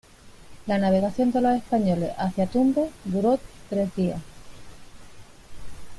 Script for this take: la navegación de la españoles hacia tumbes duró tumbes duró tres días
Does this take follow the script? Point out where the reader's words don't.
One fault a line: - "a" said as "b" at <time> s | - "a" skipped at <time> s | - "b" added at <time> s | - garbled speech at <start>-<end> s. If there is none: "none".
- "la" said as "los" at 1.4 s
- "tumbes duró" skipped at 3.4 s